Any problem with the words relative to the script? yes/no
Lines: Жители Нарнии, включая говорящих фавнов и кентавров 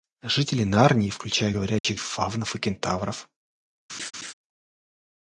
no